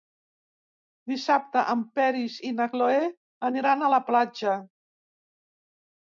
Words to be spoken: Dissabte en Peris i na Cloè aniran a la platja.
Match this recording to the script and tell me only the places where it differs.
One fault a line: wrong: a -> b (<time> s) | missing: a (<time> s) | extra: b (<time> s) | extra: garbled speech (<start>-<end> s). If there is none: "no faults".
no faults